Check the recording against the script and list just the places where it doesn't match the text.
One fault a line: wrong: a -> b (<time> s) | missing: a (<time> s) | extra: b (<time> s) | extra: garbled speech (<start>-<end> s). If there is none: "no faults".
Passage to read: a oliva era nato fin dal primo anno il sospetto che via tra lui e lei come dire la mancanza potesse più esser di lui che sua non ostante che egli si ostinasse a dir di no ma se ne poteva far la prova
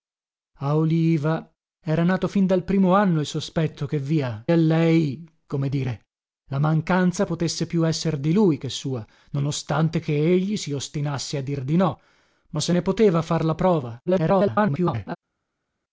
missing: tra lui (4.4 s)
extra: garbled speech (14.1-15.2 s)